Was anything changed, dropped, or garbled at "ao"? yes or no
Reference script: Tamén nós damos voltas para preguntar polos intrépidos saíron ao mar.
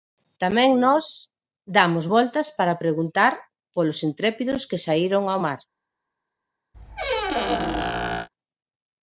no